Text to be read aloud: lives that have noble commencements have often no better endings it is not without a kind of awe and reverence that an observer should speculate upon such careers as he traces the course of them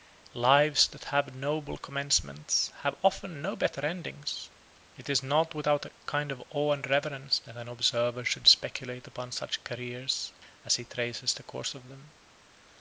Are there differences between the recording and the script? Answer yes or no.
no